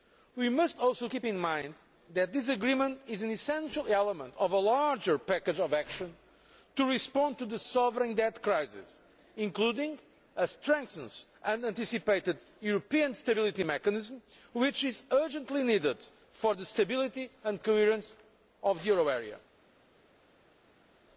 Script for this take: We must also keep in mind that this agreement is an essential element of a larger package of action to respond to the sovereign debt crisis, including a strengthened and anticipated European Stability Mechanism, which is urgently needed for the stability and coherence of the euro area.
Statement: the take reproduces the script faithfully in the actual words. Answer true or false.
true